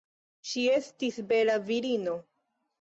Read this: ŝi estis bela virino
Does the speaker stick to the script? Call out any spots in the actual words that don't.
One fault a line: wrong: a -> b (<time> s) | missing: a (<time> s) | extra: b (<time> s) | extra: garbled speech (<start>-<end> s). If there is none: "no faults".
no faults